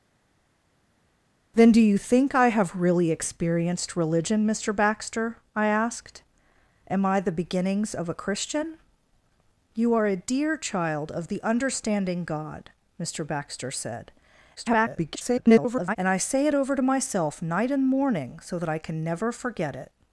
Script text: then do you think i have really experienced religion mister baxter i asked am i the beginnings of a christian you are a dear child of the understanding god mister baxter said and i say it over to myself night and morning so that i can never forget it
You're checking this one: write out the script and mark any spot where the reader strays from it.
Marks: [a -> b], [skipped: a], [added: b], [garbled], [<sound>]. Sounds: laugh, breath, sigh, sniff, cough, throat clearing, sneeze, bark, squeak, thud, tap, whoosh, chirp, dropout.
then do you think i have really experienced religion mister baxter i asked am i the beginnings of a christian you are a dear child of the understanding god mister baxter said [garbled] and i say it over to myself night and morning so that i can never forget it